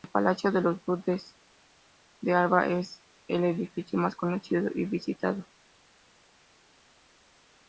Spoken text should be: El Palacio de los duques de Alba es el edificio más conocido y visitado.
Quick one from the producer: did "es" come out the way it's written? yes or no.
yes